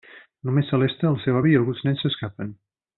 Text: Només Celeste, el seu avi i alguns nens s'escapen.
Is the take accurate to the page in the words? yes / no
yes